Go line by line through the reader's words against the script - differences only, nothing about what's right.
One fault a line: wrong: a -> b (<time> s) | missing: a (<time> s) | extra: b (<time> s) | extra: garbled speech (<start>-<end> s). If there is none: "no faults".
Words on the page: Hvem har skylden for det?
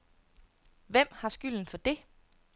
no faults